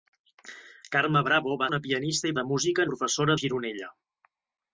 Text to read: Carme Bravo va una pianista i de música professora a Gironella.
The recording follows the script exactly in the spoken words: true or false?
true